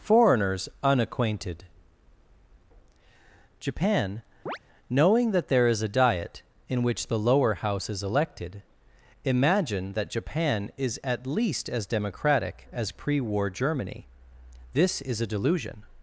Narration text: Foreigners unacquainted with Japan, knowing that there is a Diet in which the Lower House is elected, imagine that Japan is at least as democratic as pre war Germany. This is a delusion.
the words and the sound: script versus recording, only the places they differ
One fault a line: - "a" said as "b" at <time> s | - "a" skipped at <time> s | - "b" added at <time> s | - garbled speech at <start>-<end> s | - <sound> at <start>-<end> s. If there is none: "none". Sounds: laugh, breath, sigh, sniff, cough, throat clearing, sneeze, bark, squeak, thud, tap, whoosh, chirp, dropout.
- "with" skipped at 1.6 s
- chirp at 4.5-4.6 s